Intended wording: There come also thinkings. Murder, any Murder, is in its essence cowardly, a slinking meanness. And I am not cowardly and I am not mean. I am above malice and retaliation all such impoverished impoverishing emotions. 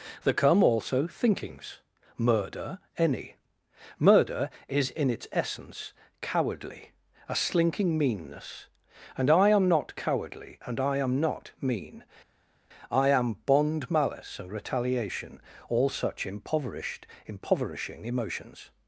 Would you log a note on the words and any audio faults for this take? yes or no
yes